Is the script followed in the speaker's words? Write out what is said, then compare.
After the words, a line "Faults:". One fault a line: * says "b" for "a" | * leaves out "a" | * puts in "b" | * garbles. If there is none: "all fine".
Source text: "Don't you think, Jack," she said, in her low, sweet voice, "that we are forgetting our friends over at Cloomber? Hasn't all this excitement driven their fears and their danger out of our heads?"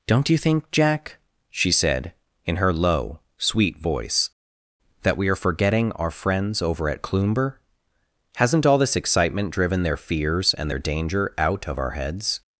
"Don't you think, Jack," she said, in her low, sweet voice, "that we are forgetting our friends over at Cloomber? Hasn't all this excitement driven their fears and their danger out of our heads?"
Faults:
all fine